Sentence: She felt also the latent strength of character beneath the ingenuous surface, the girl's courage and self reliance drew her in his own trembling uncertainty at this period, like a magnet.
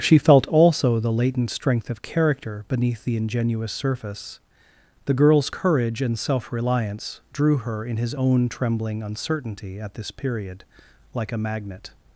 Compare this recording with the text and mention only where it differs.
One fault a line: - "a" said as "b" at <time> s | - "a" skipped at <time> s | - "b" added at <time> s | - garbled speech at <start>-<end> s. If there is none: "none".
none